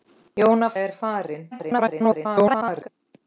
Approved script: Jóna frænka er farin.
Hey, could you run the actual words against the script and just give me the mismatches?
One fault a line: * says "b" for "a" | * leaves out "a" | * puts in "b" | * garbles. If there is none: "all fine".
* leaves out "frænka"
* garbles